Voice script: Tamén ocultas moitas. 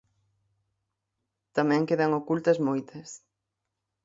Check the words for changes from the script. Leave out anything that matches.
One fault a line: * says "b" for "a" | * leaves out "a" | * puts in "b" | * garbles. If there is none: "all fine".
* puts in "quedan"